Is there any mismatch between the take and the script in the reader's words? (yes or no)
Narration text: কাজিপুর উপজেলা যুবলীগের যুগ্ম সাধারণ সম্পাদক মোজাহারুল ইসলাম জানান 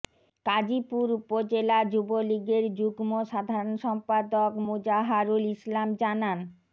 no